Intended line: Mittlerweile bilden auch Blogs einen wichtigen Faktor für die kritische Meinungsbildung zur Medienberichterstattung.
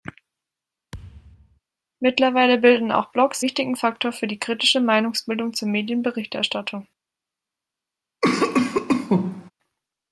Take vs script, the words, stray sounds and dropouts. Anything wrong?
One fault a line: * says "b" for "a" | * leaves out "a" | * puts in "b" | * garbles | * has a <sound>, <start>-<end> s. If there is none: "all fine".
* has a thud, 0.9-1.6 s
* leaves out "einen"
* has a cough, 8.2-9.5 s